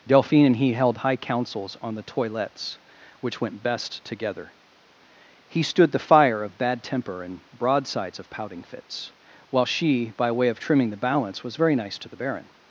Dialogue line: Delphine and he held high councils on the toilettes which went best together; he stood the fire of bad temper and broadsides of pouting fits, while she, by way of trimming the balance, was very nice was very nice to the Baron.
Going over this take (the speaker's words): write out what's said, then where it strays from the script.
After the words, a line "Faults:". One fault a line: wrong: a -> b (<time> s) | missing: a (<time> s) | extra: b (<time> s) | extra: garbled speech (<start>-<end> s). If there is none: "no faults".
Delphine and he held high councils on the toilettes which went best together; he stood the fire of bad temper and broadsides of pouting fits, while she, by way of trimming the balance, was very nice to the Baron.
Faults:
missing: was very nice (12.0 s)